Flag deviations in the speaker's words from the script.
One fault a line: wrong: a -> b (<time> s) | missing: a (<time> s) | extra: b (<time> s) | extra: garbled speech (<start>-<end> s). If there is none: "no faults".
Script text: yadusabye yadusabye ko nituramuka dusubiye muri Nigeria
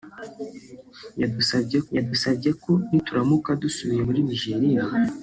no faults